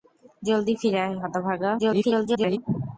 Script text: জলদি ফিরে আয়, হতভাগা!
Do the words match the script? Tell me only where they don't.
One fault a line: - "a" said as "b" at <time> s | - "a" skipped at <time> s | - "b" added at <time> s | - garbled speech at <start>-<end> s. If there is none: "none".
- garbled speech at 1.8-2.6 s